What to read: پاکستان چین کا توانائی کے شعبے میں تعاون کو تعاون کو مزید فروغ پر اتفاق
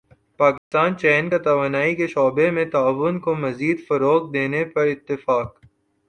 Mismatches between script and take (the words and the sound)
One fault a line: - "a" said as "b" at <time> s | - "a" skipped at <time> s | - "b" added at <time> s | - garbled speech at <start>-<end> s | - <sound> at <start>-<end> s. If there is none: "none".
- dropout at 0.6-0.7 s
- "تعاون کو" skipped at 3.3 s
- "دینے" added at 4.3 s